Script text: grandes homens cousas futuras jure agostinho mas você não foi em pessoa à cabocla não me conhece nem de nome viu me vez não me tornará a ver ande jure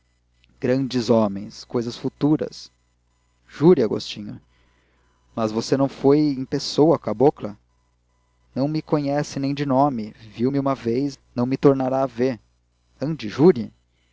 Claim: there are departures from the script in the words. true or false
true